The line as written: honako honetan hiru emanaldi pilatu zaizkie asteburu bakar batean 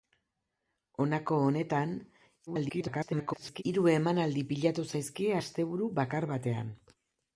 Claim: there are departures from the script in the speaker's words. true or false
true